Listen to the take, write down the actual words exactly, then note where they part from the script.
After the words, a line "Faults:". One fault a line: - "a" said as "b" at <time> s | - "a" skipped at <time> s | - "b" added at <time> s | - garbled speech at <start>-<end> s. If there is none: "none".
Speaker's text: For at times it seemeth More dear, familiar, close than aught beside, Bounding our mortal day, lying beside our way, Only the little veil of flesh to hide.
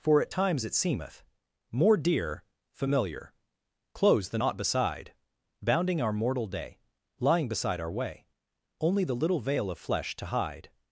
For at times it seemeth More dear, familiar, close than aught beside, Bounding our mortal day, lying beside our way, Only the little veil of flesh to hide.
Faults:
none